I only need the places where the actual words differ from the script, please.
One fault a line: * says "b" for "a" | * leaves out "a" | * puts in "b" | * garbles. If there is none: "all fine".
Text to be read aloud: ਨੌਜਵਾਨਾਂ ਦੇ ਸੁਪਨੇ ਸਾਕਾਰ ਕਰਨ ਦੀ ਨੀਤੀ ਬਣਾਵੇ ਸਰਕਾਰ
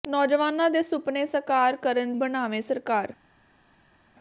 * leaves out "ਦੀ ਨੀਤੀ"